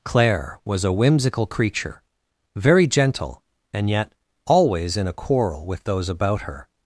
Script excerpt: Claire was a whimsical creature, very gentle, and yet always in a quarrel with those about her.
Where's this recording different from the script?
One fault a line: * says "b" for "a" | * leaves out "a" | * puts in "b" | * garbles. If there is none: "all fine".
all fine